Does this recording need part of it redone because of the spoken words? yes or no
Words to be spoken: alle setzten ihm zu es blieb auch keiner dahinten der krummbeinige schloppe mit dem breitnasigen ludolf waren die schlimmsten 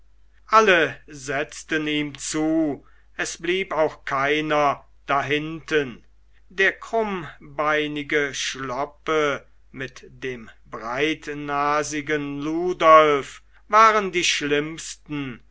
no